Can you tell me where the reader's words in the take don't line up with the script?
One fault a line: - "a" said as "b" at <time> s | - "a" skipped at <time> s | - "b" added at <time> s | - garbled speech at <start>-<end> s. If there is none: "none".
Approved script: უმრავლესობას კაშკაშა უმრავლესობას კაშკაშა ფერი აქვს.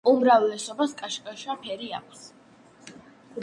- "უმრავლესობას კაშკაშა" skipped at 1.6 s